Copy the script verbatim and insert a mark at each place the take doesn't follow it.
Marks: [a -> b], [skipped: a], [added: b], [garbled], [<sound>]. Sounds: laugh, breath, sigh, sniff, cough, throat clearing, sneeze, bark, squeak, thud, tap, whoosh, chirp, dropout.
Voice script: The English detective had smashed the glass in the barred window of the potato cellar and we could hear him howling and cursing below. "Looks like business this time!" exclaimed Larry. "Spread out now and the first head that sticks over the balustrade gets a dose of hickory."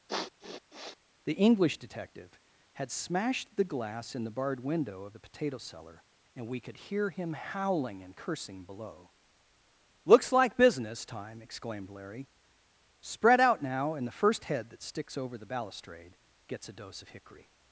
[sniff] The English detective had smashed the glass in the barred window of the potato cellar and we could hear him howling and cursing below. "Looks like business [skipped: this] time!" exclaimed Larry. "Spread out now and the first head that sticks over the balustrade gets a dose of hickory."